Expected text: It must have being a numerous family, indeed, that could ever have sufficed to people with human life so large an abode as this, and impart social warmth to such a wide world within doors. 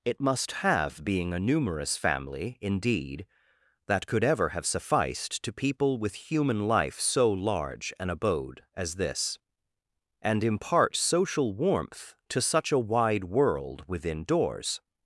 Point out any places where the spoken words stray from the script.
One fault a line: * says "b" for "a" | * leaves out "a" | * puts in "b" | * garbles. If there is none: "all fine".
all fine